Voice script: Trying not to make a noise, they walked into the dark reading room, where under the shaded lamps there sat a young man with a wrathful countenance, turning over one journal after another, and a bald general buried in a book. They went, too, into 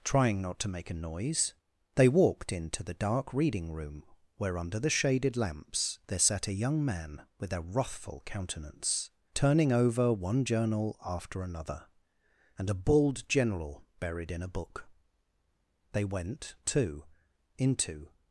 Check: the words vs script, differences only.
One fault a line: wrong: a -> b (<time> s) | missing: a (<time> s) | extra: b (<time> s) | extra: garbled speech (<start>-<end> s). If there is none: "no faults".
no faults